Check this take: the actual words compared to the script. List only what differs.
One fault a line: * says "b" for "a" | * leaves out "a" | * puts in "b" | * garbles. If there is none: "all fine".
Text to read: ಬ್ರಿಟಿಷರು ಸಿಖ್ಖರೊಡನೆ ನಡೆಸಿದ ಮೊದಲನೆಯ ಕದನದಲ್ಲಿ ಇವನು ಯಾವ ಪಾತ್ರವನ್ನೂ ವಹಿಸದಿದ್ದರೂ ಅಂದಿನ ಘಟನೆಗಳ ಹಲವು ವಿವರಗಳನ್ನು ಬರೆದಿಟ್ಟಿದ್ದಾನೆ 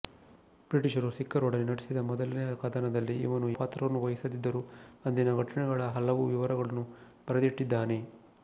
* leaves out "ಯಾವ"